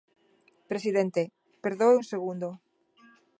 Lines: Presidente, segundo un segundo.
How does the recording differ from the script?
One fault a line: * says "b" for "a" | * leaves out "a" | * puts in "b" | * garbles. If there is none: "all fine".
* says "perdoe" for "segundo"